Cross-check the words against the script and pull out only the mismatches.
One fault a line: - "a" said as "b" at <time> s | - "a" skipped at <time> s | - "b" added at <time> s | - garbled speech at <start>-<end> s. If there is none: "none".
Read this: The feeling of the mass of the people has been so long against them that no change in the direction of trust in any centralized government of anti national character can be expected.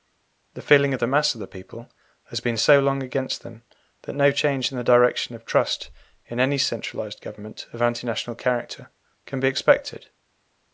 none